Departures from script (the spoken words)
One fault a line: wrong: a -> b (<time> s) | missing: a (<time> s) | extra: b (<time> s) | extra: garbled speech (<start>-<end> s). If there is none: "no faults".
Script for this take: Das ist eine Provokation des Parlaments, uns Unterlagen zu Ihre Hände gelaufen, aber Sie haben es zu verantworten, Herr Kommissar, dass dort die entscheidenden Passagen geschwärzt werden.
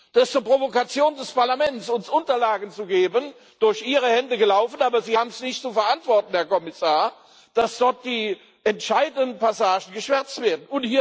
extra: geben durch (2.9 s)
extra: nicht (5.4 s)